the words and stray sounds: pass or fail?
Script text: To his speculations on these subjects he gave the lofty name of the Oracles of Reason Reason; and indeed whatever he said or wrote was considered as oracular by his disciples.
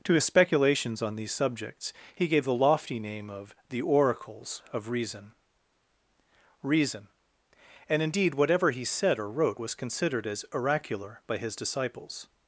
pass